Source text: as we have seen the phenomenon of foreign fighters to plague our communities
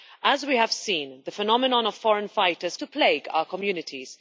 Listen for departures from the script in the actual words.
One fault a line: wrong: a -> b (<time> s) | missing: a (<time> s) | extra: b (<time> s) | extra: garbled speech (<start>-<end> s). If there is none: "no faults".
no faults